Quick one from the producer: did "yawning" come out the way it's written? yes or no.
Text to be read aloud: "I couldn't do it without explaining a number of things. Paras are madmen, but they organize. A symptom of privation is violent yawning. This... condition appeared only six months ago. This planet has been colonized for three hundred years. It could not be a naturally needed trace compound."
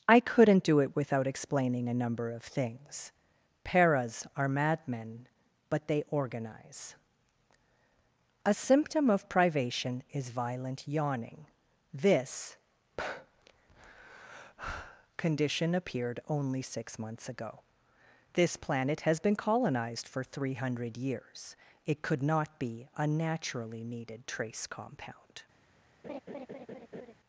yes